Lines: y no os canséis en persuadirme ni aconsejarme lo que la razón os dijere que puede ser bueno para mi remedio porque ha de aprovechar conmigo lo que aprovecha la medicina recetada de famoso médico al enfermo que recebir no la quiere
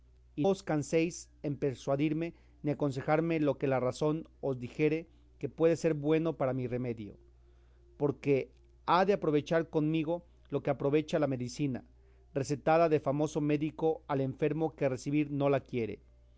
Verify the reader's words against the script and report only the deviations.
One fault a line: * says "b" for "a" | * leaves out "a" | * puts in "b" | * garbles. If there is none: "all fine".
* leaves out "no"